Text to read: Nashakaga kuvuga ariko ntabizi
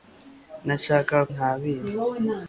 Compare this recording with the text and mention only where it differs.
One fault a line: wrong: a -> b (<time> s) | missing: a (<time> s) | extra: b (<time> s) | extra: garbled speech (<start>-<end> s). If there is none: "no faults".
missing: kuvuga ariko (1.2 s)